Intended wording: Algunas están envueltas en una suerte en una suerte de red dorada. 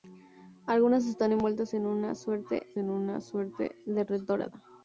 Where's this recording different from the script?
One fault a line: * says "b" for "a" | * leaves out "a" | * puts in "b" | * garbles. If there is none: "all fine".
all fine